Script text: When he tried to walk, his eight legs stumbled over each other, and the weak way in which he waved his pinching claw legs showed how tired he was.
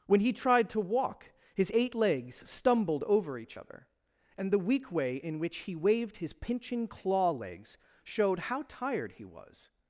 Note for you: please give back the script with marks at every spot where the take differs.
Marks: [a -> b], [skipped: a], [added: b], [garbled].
When he tried to walk, his eight legs stumbled over each other, and the weak way in which he waved his pinching claw legs showed how tired he was.